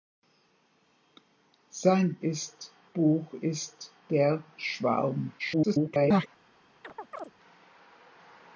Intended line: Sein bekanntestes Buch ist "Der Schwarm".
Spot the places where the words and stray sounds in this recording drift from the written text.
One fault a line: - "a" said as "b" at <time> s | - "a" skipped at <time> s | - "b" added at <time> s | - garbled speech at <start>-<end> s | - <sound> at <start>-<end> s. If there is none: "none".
- "bekanntestes" said as "ist" at 2.2 s
- garbled speech at 5.4-6.3 s
- chirp at 6.8-7.3 s